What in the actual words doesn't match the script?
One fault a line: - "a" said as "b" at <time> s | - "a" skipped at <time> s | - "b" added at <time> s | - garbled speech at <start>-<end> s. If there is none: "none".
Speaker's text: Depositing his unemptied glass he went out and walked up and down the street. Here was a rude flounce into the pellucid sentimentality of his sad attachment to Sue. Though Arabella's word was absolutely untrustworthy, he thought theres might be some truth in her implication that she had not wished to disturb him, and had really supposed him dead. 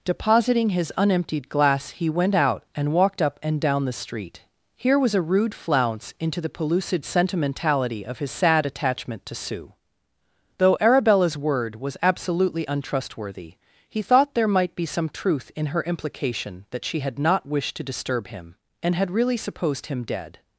- "theres" said as "there" at 14.3 s